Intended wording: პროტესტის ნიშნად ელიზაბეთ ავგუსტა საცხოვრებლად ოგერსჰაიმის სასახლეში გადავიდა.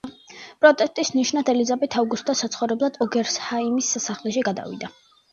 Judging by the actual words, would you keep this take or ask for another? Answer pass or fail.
pass